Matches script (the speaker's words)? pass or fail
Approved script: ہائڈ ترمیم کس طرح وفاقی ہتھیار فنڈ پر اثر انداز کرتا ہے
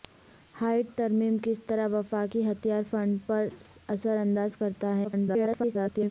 fail